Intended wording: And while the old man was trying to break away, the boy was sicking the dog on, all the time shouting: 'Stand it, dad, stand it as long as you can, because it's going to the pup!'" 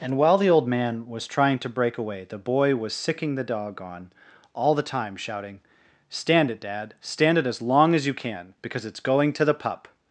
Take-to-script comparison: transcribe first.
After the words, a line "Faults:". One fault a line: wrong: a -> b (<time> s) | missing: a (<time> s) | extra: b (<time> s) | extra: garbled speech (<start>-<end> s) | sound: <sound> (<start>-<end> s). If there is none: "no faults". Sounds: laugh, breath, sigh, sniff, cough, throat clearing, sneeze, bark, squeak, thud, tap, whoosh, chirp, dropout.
And while the old man was trying to break away, the boy was sicking the dog on, all the time shouting: 'Stand it, dad, stand it as long as you can, because it's going to the pup!'"
Faults:
no faults